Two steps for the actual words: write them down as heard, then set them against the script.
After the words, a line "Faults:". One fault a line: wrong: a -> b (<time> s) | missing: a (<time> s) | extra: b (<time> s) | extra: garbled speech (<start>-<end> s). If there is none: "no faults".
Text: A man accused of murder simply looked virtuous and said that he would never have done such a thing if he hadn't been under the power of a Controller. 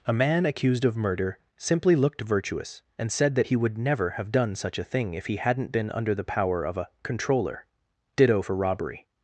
A man accused of murder simply looked virtuous and said that he would never have done such a thing if he hadn't been under the power of a Controller. Ditto for robbery
Faults:
extra: Ditto for robbery (8.1 s)